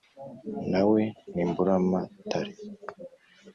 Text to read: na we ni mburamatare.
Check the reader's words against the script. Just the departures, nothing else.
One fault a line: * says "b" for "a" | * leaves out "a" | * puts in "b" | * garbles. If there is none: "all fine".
all fine